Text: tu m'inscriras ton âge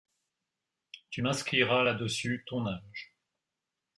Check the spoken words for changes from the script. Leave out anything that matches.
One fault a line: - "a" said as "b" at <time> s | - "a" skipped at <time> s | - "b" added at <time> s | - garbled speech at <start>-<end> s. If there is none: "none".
- "là dessus" added at 1.8 s